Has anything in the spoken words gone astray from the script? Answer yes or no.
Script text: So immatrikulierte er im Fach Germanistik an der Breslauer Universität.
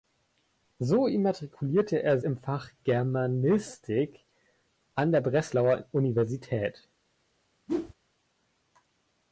no